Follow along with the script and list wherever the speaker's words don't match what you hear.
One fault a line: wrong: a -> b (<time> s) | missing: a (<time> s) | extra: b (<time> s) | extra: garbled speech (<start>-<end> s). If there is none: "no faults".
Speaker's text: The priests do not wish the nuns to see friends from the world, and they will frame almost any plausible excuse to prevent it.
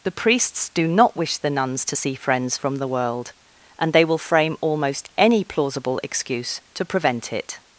no faults